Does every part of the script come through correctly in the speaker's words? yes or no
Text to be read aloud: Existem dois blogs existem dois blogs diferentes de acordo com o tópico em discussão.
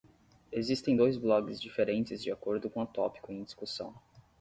no